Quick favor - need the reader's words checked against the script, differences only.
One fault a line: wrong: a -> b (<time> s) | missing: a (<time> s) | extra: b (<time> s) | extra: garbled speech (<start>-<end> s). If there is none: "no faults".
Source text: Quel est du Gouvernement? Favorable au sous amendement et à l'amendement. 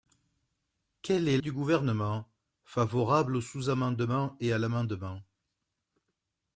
no faults